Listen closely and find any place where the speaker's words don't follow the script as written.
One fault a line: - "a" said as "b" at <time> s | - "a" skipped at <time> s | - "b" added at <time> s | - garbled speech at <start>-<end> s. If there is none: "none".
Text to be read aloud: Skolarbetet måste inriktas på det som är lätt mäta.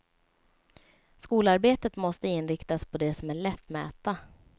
none